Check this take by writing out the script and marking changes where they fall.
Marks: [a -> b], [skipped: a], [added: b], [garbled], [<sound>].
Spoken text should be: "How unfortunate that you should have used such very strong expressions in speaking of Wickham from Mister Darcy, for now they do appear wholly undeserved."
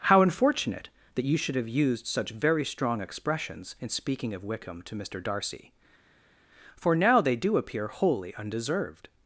"How unfortunate that you should have used such very strong expressions in speaking of Wickham [from -> to] Mister Darcy, for now they do appear wholly undeserved."